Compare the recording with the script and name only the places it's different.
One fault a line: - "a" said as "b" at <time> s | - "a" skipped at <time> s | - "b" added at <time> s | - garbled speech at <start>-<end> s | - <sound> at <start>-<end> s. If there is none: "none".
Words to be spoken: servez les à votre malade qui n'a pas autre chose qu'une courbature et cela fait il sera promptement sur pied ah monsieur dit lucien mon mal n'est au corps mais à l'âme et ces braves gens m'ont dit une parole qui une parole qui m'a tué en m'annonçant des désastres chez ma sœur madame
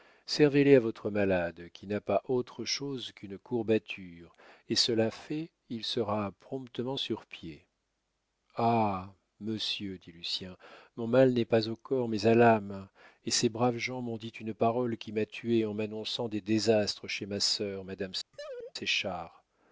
- "pas" added at 11.4 s
- "une parole qui" skipped at 15.1 s
- laugh at 18.3-18.7 s